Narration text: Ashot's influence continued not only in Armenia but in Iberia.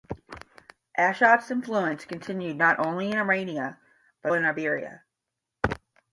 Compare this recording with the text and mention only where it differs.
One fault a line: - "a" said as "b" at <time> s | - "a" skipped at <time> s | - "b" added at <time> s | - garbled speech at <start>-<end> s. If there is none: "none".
none